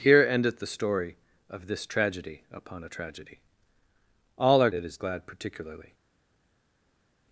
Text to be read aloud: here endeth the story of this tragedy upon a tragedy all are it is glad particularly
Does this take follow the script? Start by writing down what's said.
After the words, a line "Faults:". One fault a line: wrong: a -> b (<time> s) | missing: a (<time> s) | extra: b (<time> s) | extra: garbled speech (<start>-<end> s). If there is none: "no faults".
here endeth the story of this tragedy upon a tragedy all are it is glad particularly
Faults:
no faults